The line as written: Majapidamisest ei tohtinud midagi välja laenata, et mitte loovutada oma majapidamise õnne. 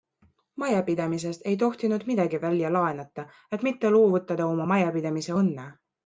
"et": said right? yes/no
yes